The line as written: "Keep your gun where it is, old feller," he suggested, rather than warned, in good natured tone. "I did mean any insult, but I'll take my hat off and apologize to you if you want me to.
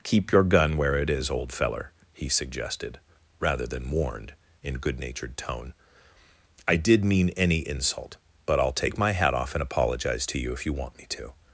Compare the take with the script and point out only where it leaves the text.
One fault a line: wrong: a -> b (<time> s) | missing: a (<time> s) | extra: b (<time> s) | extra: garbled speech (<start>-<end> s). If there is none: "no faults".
no faults